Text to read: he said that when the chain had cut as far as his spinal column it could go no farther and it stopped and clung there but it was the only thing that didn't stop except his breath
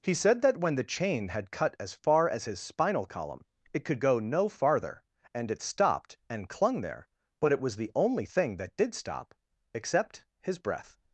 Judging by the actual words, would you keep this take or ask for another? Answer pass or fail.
fail